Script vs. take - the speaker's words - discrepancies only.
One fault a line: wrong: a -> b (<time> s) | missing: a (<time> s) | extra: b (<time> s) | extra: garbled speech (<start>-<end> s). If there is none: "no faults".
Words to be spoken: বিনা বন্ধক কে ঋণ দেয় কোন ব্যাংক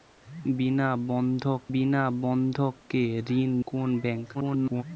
extra: বিনা বন্ধক (1.7 s)
missing: দেয় (3.5 s)
extra: garbled speech (4.3-4.8 s)